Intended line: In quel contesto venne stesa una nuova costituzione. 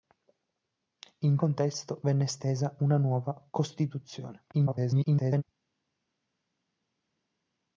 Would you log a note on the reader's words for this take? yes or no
yes